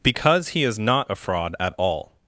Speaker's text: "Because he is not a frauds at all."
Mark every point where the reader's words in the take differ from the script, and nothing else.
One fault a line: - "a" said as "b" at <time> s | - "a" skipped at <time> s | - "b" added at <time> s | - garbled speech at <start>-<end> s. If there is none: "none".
- "frauds" said as "fraud" at 1.1 s